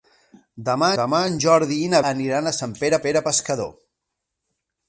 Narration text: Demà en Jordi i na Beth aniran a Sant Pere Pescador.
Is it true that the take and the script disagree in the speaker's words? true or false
true